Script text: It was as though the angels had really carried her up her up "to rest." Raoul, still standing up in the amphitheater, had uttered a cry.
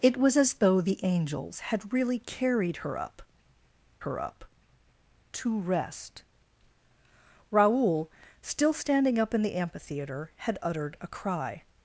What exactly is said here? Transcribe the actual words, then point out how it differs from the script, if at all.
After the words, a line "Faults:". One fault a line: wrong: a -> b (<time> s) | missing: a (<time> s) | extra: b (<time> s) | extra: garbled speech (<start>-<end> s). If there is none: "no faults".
It was as though the angels had really carried her up her up "to rest." Raoul, still standing up in the amphitheater, had uttered a cry.
Faults:
no faults